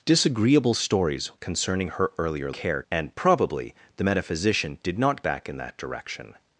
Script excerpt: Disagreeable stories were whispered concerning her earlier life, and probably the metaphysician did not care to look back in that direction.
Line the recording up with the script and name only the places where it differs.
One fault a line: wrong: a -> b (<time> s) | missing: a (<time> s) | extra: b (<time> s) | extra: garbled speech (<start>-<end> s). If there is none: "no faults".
missing: were whispered (1.3 s)
wrong: life -> care (2.5 s)
missing: care to look (5.2 s)